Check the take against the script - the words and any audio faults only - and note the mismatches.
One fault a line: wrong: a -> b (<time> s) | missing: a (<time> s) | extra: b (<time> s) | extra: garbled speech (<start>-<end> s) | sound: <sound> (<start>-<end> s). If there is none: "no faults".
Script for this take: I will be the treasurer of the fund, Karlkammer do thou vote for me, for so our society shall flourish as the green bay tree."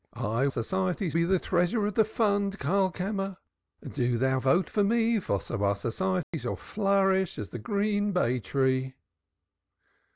wrong: will -> society (0.5 s)
sound: dropout (6.2-6.3 s)